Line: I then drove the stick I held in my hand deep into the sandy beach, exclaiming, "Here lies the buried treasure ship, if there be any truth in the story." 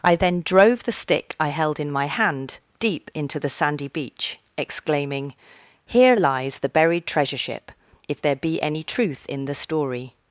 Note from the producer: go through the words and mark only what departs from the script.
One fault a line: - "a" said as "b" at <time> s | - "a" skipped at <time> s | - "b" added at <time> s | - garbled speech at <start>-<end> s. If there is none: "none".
none